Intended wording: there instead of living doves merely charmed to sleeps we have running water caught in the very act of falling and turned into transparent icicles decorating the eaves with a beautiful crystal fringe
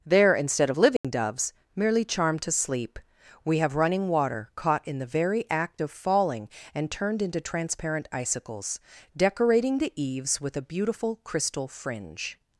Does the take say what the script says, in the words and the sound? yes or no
no